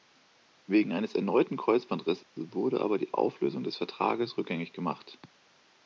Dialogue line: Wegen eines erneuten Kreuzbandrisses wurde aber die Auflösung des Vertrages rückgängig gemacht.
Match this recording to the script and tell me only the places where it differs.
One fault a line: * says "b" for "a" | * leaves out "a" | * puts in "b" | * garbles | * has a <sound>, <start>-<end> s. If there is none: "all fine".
* has a dropout, 2.2-2.4 s